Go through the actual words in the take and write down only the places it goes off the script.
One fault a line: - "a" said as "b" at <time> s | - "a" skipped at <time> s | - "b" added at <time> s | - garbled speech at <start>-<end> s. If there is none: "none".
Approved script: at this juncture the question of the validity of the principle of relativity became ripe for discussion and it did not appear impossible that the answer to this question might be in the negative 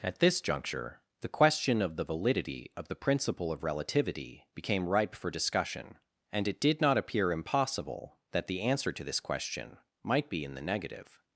none